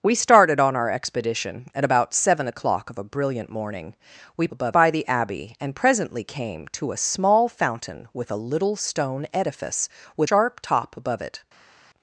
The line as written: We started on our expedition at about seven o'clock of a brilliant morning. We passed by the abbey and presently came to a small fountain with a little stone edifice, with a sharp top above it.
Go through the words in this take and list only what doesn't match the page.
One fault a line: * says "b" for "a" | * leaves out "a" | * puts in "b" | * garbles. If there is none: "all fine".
* says "above" for "passed"
* leaves out "a"